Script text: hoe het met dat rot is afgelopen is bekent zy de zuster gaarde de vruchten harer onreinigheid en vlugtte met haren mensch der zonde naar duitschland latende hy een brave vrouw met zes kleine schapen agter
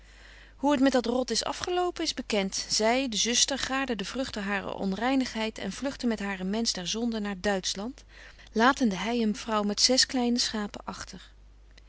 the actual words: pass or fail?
fail